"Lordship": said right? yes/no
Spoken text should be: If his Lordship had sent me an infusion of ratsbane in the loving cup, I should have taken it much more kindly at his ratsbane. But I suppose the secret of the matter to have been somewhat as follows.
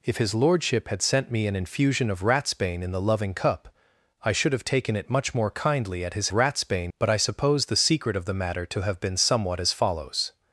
yes